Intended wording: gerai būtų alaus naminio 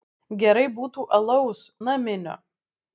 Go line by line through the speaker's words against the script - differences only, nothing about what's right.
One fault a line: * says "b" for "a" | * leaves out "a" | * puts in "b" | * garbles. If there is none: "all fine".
all fine